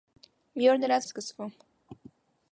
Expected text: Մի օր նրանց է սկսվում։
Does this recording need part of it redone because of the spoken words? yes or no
no